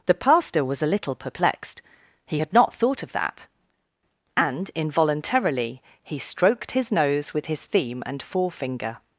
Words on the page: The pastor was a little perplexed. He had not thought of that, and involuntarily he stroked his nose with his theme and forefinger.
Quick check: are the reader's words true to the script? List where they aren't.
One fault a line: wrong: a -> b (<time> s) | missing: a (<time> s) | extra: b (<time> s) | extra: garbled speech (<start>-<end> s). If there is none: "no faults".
no faults